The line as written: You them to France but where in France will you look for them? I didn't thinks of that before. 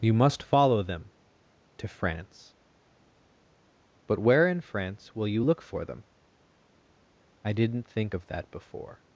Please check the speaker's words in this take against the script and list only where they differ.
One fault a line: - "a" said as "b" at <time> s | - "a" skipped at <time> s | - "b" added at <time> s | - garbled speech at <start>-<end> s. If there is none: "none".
- "must follow" added at 0.1 s
- "thinks" said as "think" at 7.8 s